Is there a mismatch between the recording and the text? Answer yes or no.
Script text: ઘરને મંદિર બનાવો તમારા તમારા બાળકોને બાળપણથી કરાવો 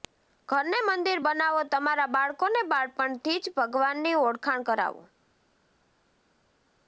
yes